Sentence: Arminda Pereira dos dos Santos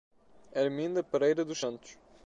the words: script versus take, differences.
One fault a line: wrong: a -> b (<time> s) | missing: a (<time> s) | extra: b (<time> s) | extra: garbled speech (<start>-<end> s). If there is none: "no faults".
missing: dos (1.6 s)